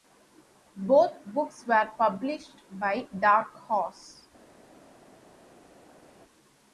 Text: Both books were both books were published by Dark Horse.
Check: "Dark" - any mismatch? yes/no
no